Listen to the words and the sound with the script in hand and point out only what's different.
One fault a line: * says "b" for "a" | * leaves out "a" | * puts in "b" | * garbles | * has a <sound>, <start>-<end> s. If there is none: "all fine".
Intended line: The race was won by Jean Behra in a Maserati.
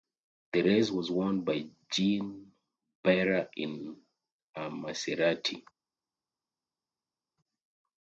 all fine